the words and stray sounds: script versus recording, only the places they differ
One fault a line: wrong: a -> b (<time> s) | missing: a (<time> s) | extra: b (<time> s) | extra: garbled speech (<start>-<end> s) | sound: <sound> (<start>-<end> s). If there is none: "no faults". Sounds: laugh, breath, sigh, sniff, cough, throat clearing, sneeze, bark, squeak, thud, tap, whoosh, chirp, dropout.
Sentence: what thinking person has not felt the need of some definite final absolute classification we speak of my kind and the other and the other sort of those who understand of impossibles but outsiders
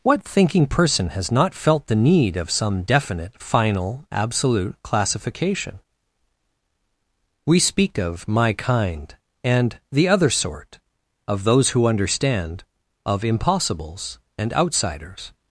missing: and the other (10.3 s)
wrong: but -> and (14.4 s)